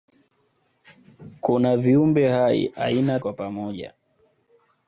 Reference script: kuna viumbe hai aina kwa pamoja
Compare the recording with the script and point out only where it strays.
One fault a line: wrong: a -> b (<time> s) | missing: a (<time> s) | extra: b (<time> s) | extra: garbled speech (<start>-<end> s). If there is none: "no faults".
no faults